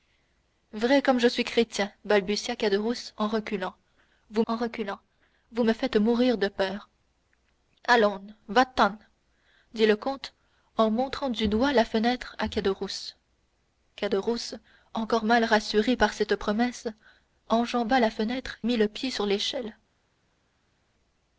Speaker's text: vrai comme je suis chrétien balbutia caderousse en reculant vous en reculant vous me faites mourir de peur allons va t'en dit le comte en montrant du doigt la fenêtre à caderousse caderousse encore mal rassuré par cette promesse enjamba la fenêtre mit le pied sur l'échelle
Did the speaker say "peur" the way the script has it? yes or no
yes